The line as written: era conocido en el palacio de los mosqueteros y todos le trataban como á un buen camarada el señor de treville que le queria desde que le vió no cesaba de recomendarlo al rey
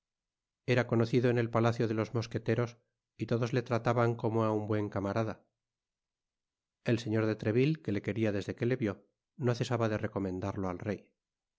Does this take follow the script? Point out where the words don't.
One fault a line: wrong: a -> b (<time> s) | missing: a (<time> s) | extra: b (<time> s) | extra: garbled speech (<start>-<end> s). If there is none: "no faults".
no faults